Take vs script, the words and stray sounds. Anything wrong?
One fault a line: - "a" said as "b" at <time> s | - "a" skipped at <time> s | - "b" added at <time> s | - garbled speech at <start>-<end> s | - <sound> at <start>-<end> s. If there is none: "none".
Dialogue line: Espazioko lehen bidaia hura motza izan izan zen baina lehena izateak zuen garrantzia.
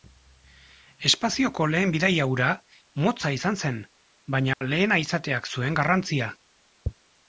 - "izan" skipped at 3.6 s
- dropout at 4.5-4.6 s